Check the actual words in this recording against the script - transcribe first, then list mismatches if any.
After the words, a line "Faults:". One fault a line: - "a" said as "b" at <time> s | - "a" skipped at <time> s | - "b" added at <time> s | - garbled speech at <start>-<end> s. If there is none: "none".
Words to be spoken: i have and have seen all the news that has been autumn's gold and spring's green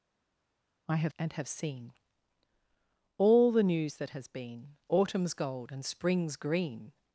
i have and have seen all the news that has been autumn's gold and spring's green
Faults:
none